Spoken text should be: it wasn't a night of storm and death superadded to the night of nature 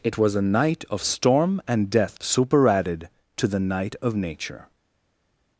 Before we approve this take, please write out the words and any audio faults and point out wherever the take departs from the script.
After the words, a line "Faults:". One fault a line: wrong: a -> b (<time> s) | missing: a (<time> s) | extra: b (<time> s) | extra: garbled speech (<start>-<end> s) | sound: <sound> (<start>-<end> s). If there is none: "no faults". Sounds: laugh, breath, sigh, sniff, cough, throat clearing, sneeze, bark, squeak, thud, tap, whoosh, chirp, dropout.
it was a night of storm and death superadded to the night of nature
Faults:
wrong: wasn't -> was (0.2 s)